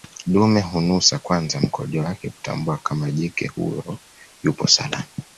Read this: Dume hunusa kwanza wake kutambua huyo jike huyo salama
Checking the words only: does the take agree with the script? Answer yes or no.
no